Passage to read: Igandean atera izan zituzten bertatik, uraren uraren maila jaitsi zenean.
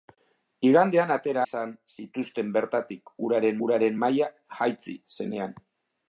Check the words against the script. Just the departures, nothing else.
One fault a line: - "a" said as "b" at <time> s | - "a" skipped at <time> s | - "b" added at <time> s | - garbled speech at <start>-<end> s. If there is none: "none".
none